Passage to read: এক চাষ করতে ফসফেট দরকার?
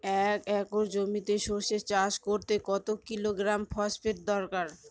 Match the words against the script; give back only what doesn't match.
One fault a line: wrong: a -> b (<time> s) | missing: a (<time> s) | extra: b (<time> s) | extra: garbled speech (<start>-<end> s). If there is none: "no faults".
extra: একর জমিতে সরষে (0.6 s)
extra: কত কিলোগ্রাম (2.6 s)